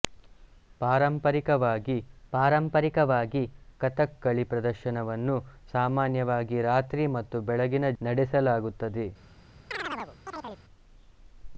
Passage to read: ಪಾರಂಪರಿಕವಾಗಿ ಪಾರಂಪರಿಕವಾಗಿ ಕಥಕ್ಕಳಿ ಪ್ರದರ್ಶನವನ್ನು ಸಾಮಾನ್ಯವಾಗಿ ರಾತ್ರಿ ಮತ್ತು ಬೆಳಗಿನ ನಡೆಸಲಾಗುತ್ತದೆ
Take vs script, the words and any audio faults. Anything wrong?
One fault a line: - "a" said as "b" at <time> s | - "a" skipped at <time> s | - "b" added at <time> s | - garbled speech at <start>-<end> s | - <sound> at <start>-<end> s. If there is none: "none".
- chirp at 9.7-10.6 s